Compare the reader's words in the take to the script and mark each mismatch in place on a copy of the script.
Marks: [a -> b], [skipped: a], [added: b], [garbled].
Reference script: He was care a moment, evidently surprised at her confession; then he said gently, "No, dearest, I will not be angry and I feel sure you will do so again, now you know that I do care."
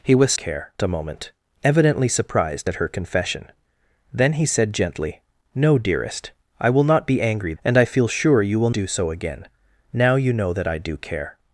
He was care a moment, evidently surprised at her confession; then he said gently, "No, dearest, I will not be angry and I feel sure you will do so again, now you know that I do care."